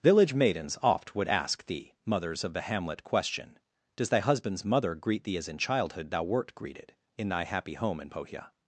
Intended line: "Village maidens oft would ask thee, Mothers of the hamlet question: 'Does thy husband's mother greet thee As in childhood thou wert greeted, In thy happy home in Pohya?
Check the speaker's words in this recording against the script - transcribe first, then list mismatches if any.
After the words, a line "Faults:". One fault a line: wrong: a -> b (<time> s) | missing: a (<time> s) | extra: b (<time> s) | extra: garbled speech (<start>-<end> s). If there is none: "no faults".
"Village maidens oft would ask thee, Mothers of the hamlet question: 'Does thy husband's mother greet thee As in childhood thou wert greeted, In thy happy home in Pohya?
Faults:
no faults